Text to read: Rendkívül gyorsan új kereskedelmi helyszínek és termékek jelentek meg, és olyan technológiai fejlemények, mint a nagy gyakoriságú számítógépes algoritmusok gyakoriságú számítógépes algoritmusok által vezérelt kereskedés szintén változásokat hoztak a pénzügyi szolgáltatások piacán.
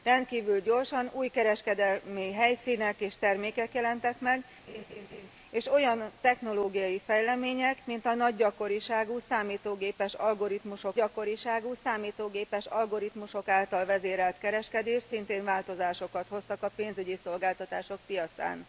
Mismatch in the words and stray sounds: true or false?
true